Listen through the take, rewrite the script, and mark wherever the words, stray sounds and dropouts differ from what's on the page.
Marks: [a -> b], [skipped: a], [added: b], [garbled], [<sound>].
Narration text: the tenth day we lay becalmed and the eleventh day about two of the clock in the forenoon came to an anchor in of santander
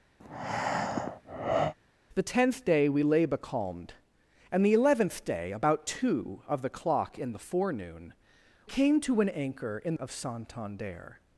[breath] the tenth day we lay becalmed and the eleventh day about two of the clock in the forenoon came to an anchor in of santander